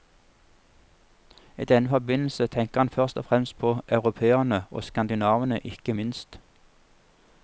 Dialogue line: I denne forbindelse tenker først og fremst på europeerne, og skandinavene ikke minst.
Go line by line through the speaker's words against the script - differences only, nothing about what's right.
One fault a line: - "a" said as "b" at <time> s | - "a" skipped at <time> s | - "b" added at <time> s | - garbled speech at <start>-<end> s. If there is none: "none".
- "han" added at 2.8 s